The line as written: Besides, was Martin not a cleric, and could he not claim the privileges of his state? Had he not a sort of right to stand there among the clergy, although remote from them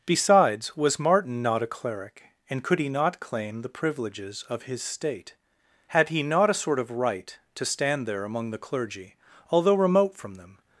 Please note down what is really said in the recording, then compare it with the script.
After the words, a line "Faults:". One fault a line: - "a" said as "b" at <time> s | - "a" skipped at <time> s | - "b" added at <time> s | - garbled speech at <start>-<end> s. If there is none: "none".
Besides, was Martin not a cleric, and could he not claim the privileges of his state? Had he not a sort of right to stand there among the clergy, although remote from them
Faults:
none